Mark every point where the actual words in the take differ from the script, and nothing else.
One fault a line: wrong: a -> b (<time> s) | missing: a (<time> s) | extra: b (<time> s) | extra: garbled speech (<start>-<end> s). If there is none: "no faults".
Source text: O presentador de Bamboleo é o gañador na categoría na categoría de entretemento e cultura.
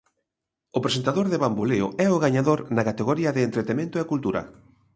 missing: na categoría (3.3 s)